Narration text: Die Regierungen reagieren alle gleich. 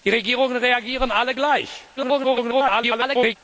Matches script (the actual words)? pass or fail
fail